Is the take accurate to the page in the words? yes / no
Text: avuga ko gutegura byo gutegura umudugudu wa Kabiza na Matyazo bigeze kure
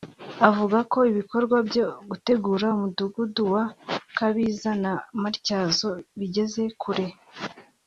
no